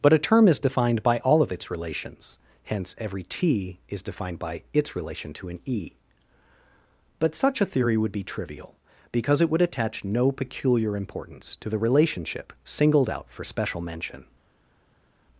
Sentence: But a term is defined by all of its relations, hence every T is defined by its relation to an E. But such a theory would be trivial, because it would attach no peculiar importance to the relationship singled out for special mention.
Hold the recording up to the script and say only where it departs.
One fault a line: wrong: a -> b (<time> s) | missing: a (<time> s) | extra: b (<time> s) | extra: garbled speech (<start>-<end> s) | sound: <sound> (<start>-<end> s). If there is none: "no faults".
no faults